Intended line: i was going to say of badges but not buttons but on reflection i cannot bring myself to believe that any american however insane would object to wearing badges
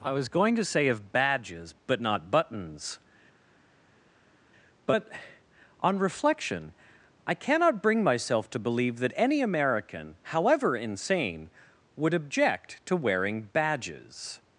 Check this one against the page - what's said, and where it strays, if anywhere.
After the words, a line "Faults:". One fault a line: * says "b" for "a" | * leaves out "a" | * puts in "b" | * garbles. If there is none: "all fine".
i was going to say of badges but not buttons but on reflection i cannot bring myself to believe that any american however insane would object to wearing badges
Faults:
all fine